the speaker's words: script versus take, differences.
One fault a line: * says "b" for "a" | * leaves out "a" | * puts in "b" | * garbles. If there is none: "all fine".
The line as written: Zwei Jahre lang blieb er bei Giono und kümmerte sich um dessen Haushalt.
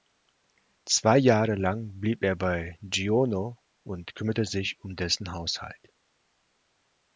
all fine